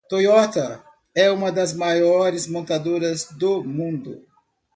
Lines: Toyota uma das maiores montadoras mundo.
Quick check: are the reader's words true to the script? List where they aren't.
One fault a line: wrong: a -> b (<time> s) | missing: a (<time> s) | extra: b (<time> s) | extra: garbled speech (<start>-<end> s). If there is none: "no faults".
extra: é (1.1 s)
extra: do (3.3 s)